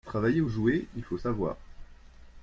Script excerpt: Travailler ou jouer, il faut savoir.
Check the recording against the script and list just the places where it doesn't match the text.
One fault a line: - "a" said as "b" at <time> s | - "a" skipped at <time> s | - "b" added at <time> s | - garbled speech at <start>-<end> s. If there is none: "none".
none